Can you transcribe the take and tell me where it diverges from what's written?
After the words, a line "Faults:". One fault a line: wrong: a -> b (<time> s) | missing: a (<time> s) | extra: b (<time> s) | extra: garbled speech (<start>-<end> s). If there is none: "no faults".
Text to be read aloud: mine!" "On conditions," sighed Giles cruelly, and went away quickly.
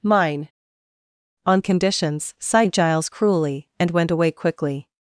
mine!" "On conditions," sighed Giles cruelly, and went away quickly.
Faults:
no faults